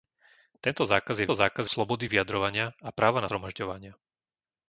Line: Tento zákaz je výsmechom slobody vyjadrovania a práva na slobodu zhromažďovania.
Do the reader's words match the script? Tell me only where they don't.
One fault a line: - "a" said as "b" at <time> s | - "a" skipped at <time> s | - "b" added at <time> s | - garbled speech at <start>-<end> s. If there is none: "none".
- "výsmechom" said as "zákaz" at 1.3 s
- "slobodu" skipped at 3.3 s